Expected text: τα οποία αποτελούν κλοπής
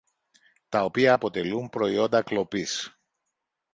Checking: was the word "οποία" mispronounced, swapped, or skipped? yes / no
no